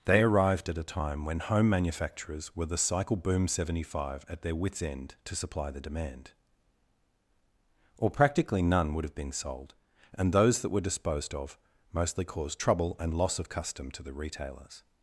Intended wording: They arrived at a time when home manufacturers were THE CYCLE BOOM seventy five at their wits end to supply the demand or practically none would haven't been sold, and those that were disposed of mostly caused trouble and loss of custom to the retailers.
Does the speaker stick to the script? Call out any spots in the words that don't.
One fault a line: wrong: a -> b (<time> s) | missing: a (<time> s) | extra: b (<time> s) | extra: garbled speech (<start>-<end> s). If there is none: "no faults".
wrong: haven't -> have (9.0 s)